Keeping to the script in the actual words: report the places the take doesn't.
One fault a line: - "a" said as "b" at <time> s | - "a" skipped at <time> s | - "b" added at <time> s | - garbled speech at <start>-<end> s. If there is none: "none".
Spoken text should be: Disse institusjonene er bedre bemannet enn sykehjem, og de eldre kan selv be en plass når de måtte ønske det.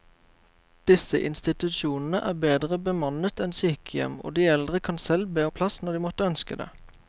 none